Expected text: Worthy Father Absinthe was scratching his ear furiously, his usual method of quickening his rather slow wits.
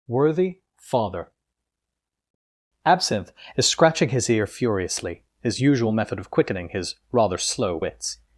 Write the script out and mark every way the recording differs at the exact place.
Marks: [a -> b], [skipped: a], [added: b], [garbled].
Worthy Father Absinthe [was -> is] scratching his ear furiously, his usual method of quickening his rather slow wits.